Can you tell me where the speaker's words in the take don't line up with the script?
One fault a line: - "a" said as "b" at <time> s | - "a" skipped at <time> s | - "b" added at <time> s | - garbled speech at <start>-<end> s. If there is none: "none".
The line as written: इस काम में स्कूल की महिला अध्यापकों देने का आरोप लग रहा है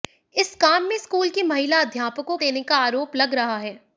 none